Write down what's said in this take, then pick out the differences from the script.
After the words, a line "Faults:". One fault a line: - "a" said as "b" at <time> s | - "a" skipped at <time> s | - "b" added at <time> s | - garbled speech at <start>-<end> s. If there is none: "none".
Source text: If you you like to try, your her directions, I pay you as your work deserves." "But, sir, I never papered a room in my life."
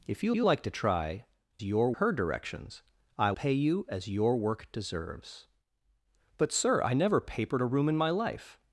If you you like to try, your her directions, I pay you as your work deserves." "But, sir, I never papered a room in my life."
Faults:
none